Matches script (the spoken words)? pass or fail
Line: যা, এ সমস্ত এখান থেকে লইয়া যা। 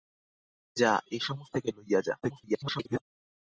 fail